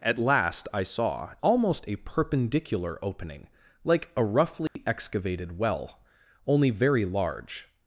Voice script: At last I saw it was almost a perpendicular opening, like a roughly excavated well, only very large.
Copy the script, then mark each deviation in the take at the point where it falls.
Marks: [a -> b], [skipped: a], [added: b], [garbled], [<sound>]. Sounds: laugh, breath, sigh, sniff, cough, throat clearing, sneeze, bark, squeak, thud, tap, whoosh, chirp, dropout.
At last I saw [skipped: it was] almost a perpendicular opening, like a roughly [dropout] excavated well, only very large.